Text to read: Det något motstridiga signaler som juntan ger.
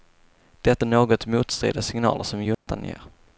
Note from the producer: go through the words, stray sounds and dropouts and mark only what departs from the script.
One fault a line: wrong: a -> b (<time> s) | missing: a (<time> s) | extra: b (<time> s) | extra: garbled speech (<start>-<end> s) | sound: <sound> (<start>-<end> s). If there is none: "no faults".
sound: dropout (2.5-2.7 s)